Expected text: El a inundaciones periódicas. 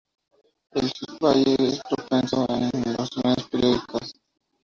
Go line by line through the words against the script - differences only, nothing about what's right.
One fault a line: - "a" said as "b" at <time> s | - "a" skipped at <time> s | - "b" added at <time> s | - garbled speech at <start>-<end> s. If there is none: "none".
- "valle es propenso" added at 1.2 s